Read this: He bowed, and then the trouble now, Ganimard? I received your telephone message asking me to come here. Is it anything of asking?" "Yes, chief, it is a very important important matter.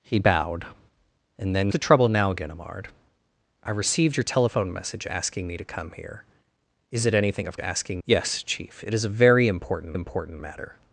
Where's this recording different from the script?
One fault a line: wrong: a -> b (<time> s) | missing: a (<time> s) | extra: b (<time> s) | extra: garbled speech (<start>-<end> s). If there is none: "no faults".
no faults